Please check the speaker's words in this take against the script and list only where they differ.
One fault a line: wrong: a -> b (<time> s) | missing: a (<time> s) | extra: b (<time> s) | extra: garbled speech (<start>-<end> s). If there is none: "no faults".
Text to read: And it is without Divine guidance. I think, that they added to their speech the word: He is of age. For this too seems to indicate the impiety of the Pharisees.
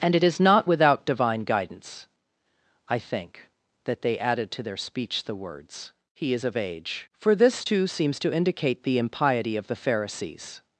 extra: not (0.4 s)
wrong: word -> words (5.4 s)